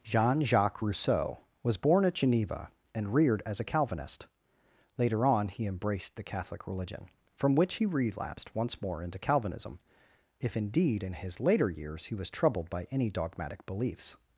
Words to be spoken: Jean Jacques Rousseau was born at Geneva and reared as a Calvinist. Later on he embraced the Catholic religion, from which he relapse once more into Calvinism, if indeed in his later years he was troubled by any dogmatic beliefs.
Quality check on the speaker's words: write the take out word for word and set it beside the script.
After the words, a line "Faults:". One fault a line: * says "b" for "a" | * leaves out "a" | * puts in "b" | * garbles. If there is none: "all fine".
Jean Jacques Rousseau was born at Geneva and reared as a Calvinist. Later on he embraced the Catholic religion, from which he relapsed once more into Calvinism, if indeed in his later years he was troubled by any dogmatic beliefs.
Faults:
* says "relapsed" for "relapse"